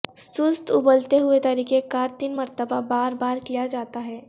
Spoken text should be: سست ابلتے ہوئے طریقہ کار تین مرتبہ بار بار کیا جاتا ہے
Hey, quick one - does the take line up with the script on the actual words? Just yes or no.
yes